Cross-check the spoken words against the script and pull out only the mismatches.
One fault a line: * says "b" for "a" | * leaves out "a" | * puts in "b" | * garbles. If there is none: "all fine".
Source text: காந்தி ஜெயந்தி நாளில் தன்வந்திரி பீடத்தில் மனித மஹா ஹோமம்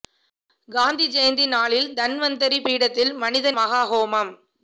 all fine